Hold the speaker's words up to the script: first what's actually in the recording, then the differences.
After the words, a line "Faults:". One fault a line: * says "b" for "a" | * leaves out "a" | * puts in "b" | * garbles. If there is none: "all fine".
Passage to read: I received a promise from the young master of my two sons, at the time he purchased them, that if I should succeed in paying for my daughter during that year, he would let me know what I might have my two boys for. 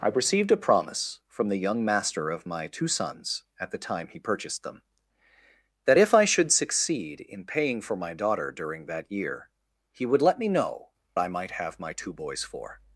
I received a promise from the young master of my two sons, at the time he purchased them, that if I should succeed in paying for my daughter during that year, he would let me know I might have my two boys for.
Faults:
* leaves out "what"